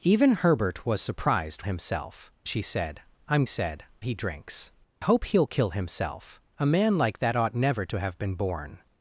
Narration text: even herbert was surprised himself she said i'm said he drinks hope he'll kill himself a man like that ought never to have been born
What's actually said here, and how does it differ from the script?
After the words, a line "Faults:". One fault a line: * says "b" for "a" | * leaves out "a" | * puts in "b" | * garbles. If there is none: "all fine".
even herbert was surprised himself she said i'm said he drinks hope he'll kill himself a man like that ought never to have been born
Faults:
all fine